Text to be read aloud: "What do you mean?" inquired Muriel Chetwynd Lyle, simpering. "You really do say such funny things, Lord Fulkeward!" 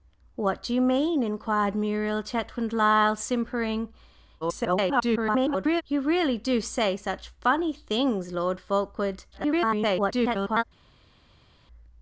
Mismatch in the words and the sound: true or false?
true